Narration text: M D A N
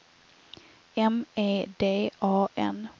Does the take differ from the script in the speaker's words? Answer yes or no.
yes